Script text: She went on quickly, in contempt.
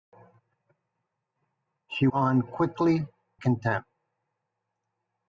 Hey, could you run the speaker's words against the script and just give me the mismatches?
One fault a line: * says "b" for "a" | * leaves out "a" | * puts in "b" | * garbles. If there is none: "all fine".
* leaves out "went"
* leaves out "in"